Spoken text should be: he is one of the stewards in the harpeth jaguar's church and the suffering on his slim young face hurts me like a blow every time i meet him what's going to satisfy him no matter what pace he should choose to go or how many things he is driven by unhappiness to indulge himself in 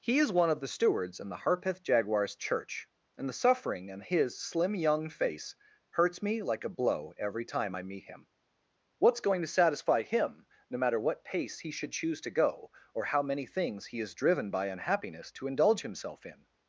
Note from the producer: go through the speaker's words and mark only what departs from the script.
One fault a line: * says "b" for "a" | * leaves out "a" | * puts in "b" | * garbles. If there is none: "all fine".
* says "in" for "on"